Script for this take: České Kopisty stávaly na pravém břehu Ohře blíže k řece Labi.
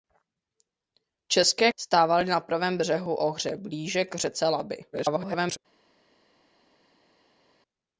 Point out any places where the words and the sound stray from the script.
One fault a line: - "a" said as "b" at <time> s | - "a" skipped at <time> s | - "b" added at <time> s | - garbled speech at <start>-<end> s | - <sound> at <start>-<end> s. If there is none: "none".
- "Kopisty" skipped at 1.7 s
- garbled speech at 4.9-5.6 s